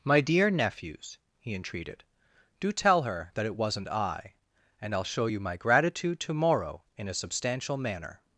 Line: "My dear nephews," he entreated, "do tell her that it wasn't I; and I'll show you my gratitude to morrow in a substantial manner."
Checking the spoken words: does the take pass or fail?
pass